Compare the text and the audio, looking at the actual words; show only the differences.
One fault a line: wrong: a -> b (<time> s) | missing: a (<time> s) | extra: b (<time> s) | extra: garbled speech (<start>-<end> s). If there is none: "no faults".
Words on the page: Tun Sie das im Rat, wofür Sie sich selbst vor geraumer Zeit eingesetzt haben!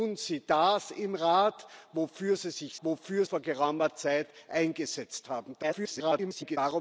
wrong: selbst -> wofür (2.8 s)
extra: garbled speech (5.6-6.6 s)